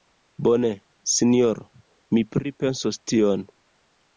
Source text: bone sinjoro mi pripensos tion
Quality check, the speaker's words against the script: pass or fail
pass